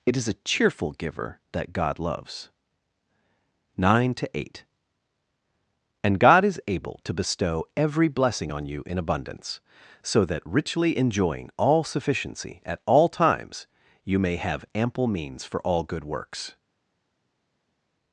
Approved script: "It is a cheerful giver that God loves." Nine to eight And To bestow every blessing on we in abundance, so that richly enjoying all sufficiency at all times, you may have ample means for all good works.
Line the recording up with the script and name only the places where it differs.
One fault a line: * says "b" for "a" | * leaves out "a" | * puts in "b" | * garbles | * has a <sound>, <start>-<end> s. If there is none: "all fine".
* puts in "God is able"
* says "you" for "we"